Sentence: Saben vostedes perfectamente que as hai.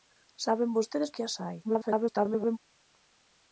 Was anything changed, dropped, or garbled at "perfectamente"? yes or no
yes